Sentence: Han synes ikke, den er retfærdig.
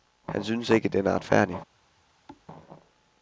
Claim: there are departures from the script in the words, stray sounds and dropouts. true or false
true